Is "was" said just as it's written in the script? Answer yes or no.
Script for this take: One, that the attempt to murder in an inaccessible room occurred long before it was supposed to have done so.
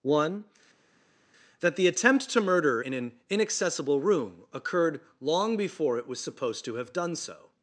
yes